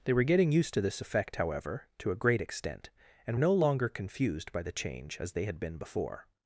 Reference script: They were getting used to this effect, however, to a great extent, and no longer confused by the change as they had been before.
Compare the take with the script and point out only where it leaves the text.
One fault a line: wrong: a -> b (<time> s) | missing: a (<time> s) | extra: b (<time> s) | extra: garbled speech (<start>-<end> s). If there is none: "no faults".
no faults